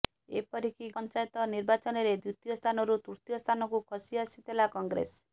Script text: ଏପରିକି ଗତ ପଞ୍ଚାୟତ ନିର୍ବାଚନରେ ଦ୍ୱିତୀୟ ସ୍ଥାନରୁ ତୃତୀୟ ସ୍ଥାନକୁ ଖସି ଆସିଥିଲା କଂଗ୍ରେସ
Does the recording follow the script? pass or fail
fail